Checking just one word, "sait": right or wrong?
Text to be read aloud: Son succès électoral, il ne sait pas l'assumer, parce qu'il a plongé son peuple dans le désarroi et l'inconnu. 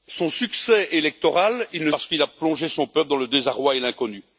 wrong